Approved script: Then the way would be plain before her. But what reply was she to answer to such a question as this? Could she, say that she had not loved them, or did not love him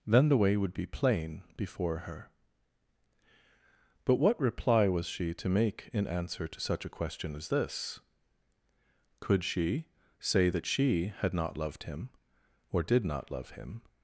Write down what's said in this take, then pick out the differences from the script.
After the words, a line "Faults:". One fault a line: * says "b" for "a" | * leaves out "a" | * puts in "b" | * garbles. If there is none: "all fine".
Then the way would be plain before her. But what reply was she to make in answer to such a question as this? Could she, say that she had not loved him, or did not love him
Faults:
* puts in "make in"
* says "him" for "them"